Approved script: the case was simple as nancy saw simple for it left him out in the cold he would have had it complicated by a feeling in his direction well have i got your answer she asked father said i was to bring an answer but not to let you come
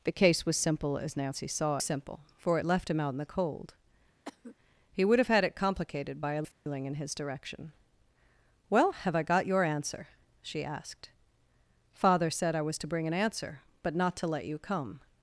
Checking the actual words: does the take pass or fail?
pass